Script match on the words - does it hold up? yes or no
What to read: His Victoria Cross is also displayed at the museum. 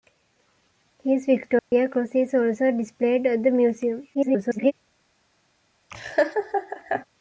no